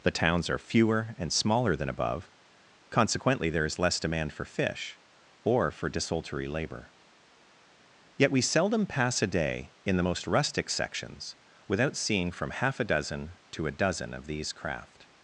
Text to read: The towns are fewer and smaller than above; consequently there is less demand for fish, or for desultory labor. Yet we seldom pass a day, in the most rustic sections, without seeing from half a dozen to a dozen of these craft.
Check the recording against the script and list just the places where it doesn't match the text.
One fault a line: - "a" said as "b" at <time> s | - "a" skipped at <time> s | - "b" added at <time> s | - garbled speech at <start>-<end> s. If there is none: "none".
none